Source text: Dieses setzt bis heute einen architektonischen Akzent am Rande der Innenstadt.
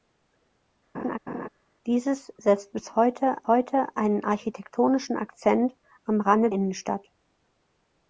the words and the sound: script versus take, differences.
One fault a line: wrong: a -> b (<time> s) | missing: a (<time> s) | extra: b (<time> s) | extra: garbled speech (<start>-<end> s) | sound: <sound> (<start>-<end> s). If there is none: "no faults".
sound: laugh (0.9-1.5 s)
extra: heute (3.5 s)
missing: der (6.5 s)